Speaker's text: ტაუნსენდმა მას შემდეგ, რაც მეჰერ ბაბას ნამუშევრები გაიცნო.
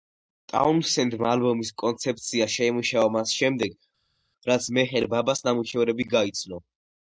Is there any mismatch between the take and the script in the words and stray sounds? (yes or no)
yes